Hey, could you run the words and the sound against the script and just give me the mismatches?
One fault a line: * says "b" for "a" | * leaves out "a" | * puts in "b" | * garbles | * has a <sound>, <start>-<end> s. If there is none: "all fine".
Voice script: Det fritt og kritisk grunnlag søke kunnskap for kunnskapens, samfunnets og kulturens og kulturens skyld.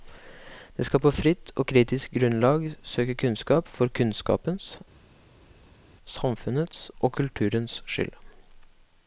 * puts in "skal på"
* leaves out "og kulturens"